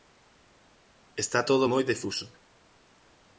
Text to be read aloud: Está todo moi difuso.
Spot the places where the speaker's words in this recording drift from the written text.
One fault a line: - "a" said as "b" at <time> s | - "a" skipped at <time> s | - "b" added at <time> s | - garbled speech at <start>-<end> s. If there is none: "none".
none